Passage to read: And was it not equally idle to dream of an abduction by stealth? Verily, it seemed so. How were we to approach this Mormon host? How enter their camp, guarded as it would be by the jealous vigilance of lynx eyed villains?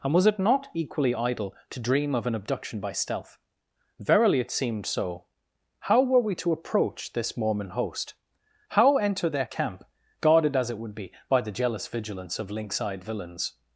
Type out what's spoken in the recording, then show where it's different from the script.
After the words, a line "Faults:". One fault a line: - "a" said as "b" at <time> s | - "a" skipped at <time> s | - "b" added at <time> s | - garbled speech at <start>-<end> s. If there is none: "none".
And was it not equally idle to dream of an abduction by stealth? Verily, it seemed so. How were we to approach this Mormon host? How enter their camp, guarded as it would be by the jealous vigilance of lynx eyed villains?
Faults:
none